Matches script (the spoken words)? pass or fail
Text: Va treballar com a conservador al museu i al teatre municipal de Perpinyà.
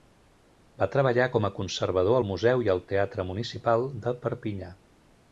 pass